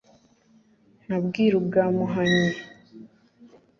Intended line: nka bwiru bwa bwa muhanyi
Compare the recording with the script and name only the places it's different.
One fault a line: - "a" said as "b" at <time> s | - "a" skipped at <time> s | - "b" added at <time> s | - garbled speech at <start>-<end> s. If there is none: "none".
- "bwa" skipped at 1.9 s